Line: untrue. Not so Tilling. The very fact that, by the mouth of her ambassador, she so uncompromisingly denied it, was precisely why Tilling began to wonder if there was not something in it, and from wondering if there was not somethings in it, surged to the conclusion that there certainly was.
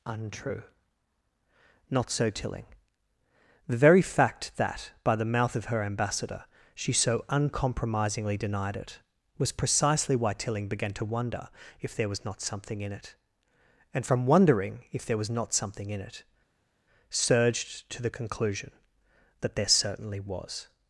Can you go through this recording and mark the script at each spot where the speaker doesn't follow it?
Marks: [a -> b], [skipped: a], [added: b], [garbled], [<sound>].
untrue. Not so Tilling. The very fact that, by the mouth of her ambassador, she so uncompromisingly denied it, was precisely why Tilling began to wonder if there was not something in it, and from wondering if there was not [somethings -> something] in it, surged to the conclusion that there certainly was.